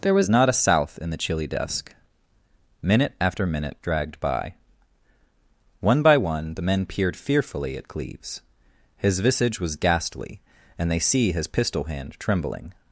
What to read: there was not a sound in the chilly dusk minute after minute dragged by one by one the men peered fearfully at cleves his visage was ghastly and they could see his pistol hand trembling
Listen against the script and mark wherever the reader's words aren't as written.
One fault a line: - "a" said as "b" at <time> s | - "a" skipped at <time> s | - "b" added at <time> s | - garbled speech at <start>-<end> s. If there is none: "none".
- "sound" said as "south" at 0.5 s
- "could" skipped at 11.0 s